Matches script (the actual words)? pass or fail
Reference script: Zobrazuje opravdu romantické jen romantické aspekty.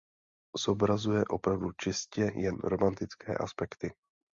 fail